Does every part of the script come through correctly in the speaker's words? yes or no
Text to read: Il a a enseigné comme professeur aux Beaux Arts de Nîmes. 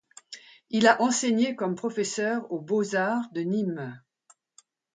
no